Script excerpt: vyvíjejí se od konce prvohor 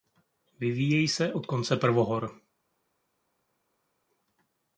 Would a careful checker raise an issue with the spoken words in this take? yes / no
no